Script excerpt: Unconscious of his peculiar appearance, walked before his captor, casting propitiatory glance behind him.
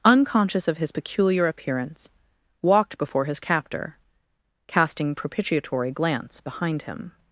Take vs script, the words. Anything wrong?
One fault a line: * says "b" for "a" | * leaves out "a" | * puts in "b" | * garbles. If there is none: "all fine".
all fine